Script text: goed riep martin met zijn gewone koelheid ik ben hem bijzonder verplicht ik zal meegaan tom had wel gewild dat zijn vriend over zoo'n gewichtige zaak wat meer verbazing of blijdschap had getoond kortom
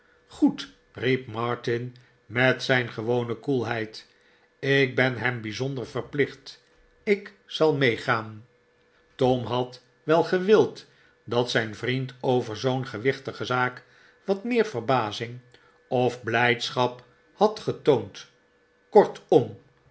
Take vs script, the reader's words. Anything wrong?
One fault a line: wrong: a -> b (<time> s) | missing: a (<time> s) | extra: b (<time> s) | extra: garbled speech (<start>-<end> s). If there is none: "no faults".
no faults